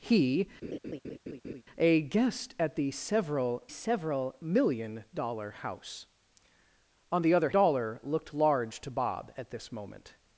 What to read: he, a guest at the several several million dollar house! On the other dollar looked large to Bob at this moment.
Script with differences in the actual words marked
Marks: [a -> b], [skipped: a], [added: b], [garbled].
he, a guest at the several several million dollar house! On the other dollar looked large to Bob at this moment.